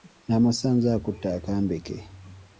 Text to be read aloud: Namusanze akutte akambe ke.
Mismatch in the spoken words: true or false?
false